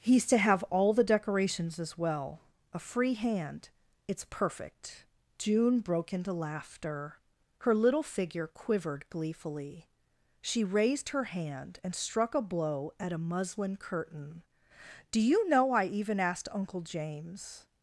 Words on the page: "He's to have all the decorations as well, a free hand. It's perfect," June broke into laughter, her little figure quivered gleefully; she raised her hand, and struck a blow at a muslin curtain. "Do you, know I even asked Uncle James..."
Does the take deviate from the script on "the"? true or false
false